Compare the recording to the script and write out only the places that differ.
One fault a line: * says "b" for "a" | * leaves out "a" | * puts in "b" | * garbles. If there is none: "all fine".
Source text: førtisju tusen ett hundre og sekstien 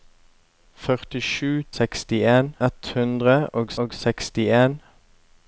* says "sekstien" for "tusen"
* puts in "og"